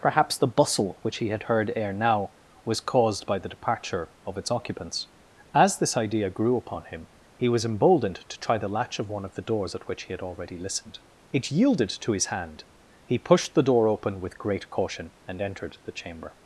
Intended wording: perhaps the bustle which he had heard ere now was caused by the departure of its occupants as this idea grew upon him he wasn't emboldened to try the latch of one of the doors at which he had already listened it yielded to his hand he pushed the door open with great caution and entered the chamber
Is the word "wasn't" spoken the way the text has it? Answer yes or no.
no